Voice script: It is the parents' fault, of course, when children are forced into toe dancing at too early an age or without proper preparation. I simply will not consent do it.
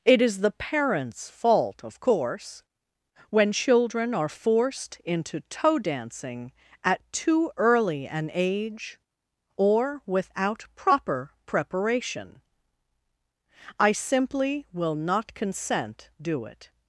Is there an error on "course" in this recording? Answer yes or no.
no